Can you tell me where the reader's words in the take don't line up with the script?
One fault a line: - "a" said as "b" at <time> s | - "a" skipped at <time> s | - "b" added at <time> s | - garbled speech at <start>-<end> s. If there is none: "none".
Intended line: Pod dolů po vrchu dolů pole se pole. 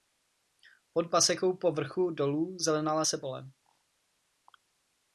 - "dolů" said as "pasekou" at 1.1 s
- "pole" said as "zelenala" at 2.6 s